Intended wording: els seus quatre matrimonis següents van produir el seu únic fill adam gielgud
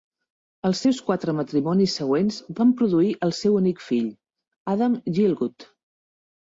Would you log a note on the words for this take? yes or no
no